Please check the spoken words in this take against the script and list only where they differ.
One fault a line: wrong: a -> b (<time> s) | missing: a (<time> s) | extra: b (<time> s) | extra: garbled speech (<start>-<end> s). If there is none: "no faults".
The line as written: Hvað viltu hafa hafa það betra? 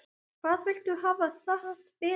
missing: hafa (1.3 s)